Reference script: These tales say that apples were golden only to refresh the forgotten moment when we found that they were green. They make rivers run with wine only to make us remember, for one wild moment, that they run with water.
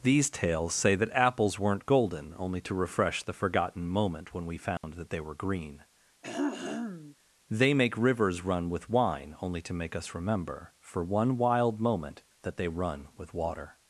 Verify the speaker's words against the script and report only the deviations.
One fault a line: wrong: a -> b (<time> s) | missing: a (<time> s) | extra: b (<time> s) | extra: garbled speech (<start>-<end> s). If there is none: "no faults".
wrong: were -> weren't (1.6 s)